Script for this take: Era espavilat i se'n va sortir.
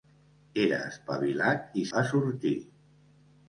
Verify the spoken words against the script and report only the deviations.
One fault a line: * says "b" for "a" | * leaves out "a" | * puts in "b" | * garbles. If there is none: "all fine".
* leaves out "se'n"